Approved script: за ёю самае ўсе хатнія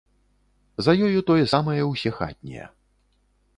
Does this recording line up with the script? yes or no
no